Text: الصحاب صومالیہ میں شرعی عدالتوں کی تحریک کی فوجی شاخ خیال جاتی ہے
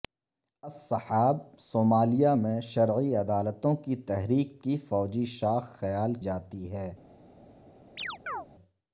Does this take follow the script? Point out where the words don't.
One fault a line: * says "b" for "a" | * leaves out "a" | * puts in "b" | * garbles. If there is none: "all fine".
all fine